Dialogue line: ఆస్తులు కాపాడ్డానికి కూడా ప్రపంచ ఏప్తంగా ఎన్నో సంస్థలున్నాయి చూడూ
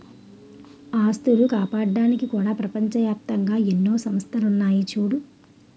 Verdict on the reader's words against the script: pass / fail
pass